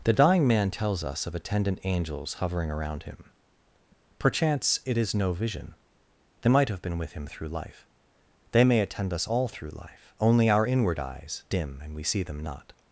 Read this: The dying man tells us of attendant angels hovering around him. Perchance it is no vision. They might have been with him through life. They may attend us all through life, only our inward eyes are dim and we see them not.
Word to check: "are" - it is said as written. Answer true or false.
false